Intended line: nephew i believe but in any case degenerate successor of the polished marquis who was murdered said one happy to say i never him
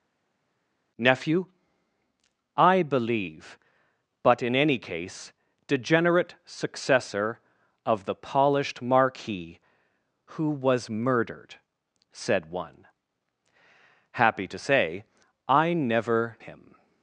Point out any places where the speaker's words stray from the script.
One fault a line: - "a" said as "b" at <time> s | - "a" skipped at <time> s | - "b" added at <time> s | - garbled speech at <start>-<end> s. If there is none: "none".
none